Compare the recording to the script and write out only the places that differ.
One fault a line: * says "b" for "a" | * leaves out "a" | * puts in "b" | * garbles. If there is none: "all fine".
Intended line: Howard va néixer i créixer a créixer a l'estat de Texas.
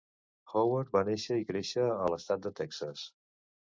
* leaves out "créixer a"